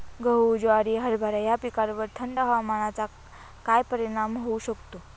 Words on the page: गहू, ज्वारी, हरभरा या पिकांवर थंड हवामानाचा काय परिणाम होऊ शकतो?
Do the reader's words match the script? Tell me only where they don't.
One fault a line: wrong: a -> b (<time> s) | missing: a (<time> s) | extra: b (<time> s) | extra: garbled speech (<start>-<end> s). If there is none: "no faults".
no faults